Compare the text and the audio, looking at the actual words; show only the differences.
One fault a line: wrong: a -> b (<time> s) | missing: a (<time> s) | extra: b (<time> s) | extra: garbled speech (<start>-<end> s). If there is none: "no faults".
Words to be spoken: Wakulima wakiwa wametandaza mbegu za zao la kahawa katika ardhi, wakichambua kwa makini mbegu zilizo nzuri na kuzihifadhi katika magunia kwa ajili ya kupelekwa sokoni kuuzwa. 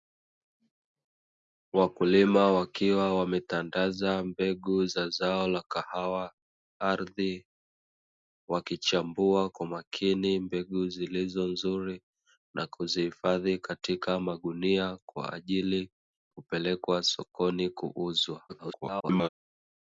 missing: katika (6.3 s)
missing: ya (15.9 s)
extra: garbled speech (18.5-19.3 s)